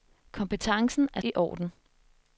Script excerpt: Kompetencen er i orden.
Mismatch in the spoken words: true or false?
false